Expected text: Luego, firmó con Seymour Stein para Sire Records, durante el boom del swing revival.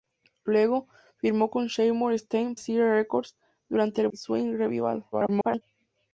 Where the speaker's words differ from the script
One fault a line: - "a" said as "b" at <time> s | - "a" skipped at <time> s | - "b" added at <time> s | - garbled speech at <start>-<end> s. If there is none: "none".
- "para" skipped at 2.5 s
- "boom del" skipped at 4.1 s
- garbled speech at 5.1-5.6 s